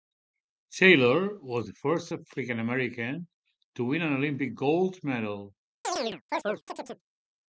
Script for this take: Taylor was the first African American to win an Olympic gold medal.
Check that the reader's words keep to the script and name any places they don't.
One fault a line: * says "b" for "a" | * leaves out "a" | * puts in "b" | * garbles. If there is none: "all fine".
all fine